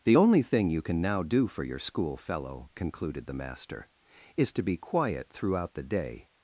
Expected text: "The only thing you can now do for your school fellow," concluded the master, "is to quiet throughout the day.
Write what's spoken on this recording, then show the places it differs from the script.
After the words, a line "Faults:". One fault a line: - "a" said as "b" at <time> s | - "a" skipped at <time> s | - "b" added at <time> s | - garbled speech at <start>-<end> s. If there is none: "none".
"The only thing you can now do for your school fellow," concluded the master, "is to be quiet throughout the day.
Faults:
- "be" added at 4.6 s